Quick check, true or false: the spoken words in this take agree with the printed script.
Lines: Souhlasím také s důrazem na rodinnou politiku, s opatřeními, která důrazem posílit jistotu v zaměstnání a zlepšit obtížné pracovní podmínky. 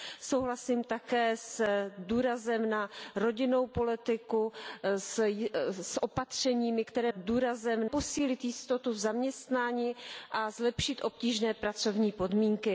true